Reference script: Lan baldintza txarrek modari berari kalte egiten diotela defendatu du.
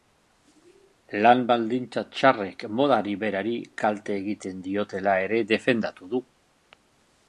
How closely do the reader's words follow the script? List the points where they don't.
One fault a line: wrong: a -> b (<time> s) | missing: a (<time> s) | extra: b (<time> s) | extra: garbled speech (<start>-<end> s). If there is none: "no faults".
extra: ere (5.3 s)